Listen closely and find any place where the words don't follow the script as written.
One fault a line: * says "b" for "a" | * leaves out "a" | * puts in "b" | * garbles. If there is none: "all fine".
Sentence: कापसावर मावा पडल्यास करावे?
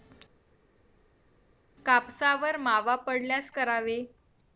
all fine